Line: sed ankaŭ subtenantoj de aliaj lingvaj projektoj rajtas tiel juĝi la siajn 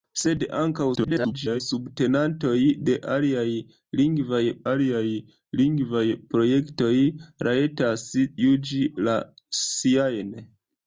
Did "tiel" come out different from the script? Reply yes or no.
yes